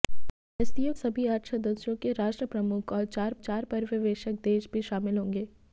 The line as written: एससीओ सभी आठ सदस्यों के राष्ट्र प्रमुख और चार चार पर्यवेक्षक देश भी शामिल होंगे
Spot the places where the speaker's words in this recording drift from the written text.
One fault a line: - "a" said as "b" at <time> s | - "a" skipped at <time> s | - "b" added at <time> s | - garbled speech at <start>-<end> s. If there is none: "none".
none